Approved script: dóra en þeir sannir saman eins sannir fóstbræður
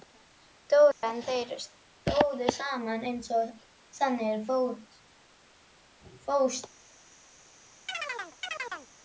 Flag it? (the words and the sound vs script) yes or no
yes